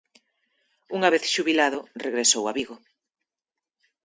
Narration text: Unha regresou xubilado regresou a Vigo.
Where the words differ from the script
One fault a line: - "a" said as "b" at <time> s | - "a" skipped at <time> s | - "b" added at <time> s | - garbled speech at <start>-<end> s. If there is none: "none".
- "regresou" said as "vez" at 1.1 s